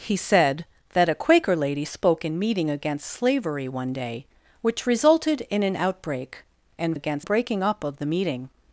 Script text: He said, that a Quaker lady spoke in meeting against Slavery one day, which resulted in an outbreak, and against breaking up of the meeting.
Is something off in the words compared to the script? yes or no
no